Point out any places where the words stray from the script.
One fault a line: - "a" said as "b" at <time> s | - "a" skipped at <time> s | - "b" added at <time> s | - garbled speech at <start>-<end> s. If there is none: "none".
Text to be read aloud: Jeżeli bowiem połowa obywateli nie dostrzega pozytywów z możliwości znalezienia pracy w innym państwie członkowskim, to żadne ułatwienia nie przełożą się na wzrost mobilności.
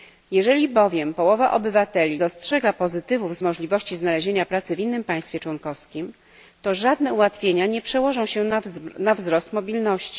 - "nie" skipped at 2.2 s